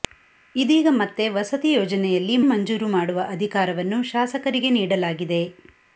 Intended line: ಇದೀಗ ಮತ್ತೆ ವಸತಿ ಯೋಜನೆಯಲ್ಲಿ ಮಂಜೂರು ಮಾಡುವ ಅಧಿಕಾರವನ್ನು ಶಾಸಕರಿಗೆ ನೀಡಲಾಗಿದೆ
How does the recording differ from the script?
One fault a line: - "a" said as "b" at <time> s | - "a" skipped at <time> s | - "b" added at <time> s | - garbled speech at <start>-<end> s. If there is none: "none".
none